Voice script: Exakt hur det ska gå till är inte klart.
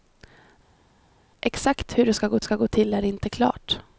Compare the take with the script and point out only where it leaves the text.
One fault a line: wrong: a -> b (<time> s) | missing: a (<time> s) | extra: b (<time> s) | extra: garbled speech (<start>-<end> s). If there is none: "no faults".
extra: ska gå (2.4 s)